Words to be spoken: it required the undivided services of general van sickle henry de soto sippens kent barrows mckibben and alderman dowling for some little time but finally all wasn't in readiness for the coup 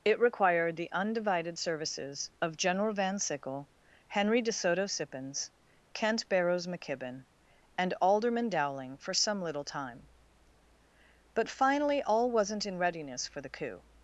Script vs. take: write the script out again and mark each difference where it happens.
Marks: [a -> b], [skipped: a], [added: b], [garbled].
it required the undivided services of general van sickle henry de soto sippens kent barrows mckibben and alderman dowling for some little time but finally all wasn't in readiness for the coup